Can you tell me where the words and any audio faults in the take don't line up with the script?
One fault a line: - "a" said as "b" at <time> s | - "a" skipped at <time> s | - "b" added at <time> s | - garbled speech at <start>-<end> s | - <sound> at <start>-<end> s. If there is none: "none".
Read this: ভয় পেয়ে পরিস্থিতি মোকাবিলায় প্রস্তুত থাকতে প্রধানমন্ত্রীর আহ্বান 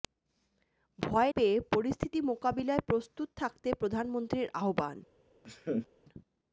- laugh at 5.4-5.9 s